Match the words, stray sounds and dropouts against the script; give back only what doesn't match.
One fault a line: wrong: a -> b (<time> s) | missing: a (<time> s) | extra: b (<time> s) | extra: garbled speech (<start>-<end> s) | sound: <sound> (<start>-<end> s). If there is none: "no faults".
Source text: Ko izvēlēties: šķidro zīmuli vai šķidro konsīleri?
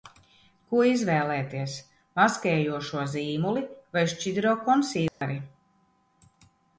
wrong: šķidro -> maskējošo (2.2 s)
sound: dropout (5.1-5.2 s)